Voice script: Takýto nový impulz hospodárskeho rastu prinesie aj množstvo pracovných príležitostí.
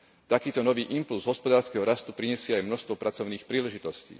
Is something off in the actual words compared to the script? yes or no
no